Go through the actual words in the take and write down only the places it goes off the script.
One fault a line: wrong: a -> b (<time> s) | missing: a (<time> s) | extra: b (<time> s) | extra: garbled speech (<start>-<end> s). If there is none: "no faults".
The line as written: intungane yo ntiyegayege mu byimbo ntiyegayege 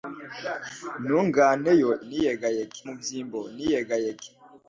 no faults